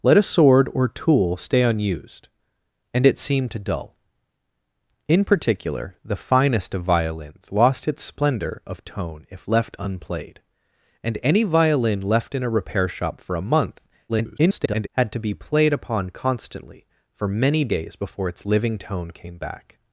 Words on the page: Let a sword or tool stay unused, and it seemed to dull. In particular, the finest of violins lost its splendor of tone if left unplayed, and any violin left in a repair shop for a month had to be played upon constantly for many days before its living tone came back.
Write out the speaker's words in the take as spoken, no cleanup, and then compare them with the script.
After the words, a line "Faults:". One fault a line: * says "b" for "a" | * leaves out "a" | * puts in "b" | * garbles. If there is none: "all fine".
Let a sword or tool stay unused, and it seemed to dull. In particular, the finest of violins lost its splendor of tone if left unplayed, and any violin left in a repair shop for a month [garbled] had to be played upon constantly for many days before its living tone came back.
Faults:
* garbles